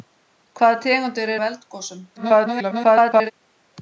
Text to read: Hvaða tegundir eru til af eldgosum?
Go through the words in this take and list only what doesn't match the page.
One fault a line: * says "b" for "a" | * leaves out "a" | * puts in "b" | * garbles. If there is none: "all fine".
* leaves out "eru til"
* garbles